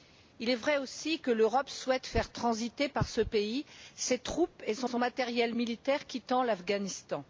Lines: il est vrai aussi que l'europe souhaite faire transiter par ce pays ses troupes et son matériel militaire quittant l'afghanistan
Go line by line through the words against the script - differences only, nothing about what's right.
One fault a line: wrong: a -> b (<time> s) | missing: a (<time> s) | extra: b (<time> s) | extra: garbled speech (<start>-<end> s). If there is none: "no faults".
extra: son (4.8 s)